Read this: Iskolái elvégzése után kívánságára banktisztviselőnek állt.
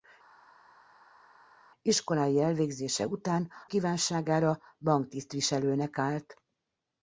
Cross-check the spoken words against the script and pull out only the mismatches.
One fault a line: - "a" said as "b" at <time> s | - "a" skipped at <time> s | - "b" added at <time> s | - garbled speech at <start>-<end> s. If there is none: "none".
none